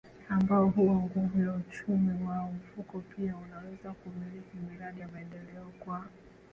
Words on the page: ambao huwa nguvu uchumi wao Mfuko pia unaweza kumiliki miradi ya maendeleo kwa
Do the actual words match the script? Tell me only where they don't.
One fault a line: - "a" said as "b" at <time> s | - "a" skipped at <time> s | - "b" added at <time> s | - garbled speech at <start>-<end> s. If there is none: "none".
- "ya" added at 1.4 s